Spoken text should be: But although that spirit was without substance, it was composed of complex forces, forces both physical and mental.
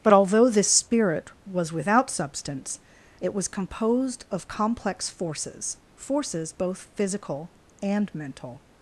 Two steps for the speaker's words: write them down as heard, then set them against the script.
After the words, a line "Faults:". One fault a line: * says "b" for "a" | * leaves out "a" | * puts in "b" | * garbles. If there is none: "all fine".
But although this spirit was without substance, it was composed of complex forces, forces both physical and mental.
Faults:
* says "this" for "that"